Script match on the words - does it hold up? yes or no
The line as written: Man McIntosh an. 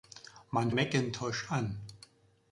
yes